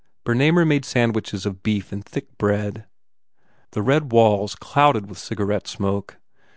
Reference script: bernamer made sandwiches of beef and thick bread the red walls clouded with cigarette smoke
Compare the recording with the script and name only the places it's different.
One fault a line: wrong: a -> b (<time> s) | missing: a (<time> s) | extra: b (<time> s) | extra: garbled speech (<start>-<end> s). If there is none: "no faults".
no faults